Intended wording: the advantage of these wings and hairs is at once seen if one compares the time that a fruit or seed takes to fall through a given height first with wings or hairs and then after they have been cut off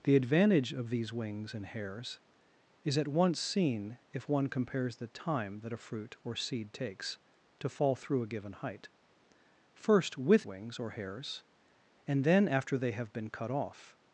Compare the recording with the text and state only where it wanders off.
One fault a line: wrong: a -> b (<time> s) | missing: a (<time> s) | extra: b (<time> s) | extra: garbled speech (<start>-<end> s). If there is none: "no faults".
no faults